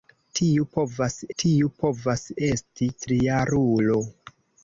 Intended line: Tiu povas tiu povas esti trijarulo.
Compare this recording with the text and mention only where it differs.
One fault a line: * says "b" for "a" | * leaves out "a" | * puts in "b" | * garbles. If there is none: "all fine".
all fine